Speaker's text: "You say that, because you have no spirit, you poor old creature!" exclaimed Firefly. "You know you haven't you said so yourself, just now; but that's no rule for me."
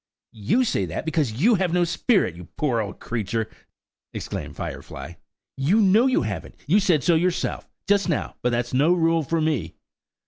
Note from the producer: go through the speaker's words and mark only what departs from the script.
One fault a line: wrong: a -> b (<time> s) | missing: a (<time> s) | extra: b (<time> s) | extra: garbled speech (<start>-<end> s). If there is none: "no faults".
no faults